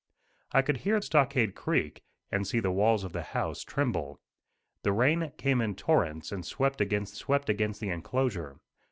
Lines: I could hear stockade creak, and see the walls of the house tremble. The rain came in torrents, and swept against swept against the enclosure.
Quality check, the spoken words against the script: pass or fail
pass